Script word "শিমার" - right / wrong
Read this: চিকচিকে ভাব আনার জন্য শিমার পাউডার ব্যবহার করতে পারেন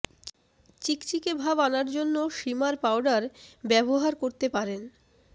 right